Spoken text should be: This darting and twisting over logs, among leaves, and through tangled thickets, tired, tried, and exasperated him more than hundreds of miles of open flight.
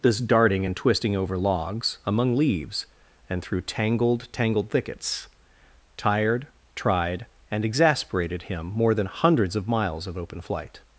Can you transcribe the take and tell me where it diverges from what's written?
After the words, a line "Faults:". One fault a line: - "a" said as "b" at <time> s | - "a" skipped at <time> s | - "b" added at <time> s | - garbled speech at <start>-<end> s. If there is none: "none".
This darting and twisting over logs, among leaves, and through tangled tangled thickets, tired, tried, and exasperated him more than hundreds of miles of open flight.
Faults:
- "tangled" added at 4.3 s